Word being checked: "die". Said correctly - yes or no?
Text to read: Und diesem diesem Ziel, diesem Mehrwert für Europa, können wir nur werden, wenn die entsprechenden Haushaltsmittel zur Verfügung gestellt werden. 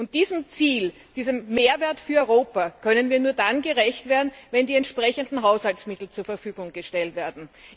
yes